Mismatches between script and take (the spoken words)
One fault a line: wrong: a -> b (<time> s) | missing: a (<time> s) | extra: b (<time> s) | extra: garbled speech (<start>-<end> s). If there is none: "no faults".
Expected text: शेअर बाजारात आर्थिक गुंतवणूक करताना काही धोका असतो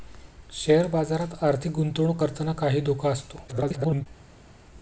extra: garbled speech (3.5-4.1 s)